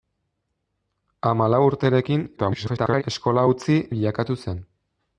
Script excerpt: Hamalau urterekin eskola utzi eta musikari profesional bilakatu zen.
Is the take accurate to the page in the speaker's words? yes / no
no